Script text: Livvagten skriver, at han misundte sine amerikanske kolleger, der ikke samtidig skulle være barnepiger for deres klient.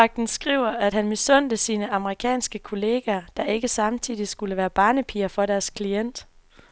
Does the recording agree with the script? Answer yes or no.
yes